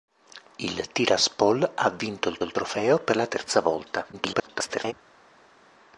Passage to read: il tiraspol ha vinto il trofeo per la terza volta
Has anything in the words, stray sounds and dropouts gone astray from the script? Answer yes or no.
yes